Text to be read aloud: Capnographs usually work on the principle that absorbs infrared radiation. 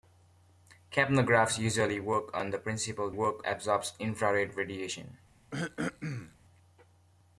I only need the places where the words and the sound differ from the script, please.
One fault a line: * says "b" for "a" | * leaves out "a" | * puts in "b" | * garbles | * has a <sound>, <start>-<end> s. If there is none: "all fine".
* says "work" for "that"
* has a throat clearing, 5.5-6.4 s